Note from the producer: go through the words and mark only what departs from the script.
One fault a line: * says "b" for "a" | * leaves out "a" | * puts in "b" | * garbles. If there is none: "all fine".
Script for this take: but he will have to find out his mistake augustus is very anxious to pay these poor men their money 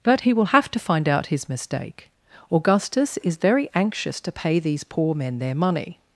all fine